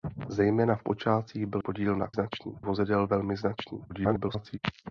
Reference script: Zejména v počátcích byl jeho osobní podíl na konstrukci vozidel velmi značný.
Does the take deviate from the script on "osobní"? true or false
true